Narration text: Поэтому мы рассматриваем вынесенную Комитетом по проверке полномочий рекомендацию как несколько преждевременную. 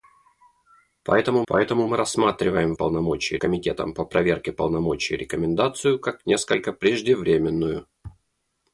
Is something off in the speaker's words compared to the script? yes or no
yes